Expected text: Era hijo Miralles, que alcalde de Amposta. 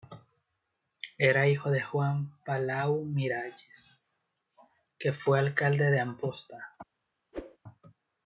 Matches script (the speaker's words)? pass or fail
fail